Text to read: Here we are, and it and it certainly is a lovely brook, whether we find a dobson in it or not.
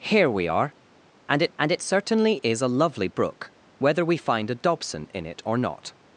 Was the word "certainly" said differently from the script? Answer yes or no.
no